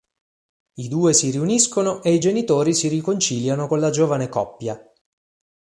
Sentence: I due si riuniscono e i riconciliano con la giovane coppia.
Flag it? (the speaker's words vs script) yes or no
yes